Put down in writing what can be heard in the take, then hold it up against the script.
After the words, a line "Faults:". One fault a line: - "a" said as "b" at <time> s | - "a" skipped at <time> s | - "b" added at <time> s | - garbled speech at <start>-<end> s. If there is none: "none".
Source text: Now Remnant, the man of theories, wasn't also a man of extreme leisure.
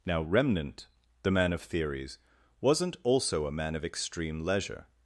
Now Remnant, the man of theories, wasn't also a man of extreme leisure.
Faults:
none